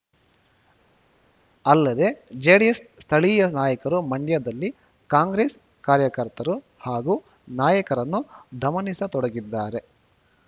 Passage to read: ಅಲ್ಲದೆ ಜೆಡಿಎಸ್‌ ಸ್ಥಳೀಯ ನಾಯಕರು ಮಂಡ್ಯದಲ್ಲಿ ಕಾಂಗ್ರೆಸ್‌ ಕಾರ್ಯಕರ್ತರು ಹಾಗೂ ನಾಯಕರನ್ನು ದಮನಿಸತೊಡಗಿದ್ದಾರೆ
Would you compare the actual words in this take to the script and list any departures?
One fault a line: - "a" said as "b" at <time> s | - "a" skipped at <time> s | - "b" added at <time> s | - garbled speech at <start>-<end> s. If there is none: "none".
none